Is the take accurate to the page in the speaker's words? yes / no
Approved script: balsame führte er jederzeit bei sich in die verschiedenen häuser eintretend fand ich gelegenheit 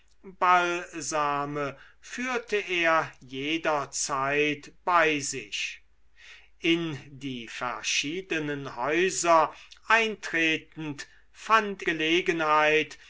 no